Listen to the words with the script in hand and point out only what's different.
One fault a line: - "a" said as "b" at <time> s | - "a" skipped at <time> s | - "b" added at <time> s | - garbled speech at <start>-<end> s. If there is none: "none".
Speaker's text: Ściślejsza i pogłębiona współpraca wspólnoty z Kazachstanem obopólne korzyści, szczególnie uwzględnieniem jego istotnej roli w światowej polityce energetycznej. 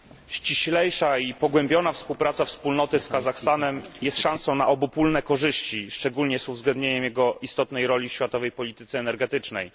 - "jest szansą na" added at 4.0 s
- "z" added at 6.4 s